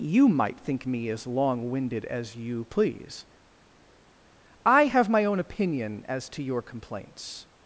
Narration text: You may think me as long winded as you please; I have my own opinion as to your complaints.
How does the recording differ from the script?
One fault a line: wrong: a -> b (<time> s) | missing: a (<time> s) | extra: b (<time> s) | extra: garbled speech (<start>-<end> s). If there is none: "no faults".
wrong: may -> might (0.3 s)